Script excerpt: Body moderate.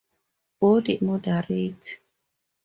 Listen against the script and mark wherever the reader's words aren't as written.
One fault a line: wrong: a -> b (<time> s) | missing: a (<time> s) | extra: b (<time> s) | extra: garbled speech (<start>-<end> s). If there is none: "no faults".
no faults